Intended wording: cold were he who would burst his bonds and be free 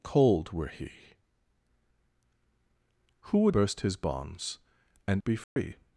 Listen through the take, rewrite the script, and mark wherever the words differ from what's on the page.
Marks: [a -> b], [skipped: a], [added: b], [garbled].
cold were he who would burst his bonds and be free